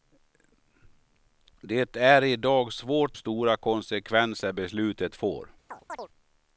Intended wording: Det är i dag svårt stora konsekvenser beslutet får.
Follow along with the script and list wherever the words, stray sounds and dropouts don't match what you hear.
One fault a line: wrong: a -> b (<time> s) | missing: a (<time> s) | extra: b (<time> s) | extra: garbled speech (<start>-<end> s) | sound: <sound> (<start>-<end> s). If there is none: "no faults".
sound: chirp (5.7-6.1 s)